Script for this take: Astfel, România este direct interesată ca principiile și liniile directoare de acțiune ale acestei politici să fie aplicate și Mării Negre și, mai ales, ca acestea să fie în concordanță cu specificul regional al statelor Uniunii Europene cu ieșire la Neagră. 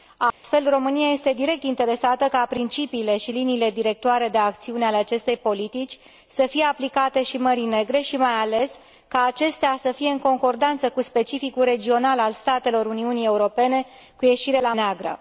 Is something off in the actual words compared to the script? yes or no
no